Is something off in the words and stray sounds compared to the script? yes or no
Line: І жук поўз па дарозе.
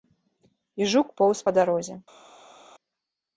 no